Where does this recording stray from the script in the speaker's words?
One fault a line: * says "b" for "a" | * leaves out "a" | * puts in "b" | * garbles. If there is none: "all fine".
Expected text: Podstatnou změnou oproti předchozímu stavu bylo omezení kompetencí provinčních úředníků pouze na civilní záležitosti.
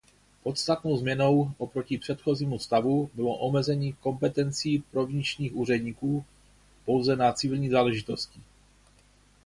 all fine